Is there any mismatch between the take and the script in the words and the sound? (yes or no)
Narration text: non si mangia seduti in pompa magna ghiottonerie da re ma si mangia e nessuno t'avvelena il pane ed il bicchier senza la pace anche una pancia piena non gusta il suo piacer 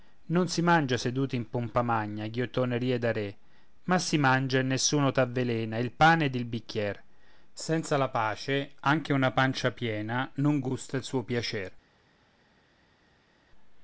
no